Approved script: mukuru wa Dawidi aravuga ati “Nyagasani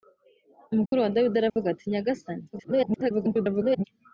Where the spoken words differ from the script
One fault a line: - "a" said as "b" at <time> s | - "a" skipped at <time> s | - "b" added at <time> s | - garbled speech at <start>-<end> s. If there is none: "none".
- garbled speech at 2.5-3.8 s